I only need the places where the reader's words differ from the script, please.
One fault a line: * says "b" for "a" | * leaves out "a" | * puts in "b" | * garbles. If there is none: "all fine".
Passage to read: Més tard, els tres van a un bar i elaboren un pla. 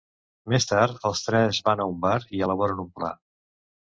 all fine